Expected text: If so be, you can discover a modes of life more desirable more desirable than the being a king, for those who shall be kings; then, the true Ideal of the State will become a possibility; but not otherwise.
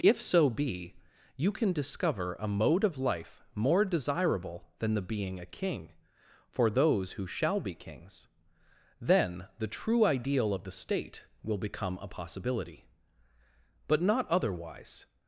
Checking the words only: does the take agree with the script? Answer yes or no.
no